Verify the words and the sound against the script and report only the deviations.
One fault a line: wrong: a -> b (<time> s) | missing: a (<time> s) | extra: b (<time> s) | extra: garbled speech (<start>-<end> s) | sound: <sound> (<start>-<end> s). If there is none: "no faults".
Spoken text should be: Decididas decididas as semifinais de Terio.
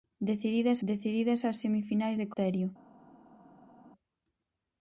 no faults